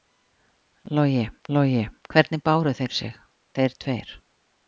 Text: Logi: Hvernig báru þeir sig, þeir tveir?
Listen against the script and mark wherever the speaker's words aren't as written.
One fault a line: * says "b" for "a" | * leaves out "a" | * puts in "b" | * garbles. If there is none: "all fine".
* puts in "logi"